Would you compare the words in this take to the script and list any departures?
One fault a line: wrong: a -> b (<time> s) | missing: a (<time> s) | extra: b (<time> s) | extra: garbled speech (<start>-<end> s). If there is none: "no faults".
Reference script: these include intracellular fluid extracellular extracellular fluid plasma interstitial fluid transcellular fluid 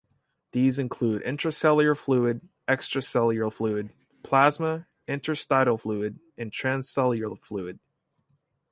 missing: extracellular (3.5 s)
extra: and (6.4 s)